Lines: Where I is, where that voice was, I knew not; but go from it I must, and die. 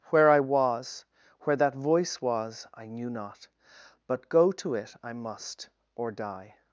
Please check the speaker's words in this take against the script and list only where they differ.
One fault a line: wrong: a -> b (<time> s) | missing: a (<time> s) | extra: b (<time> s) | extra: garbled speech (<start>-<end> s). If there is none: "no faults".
wrong: is -> was (0.4 s)
wrong: from -> to (4.5 s)
wrong: and -> or (5.9 s)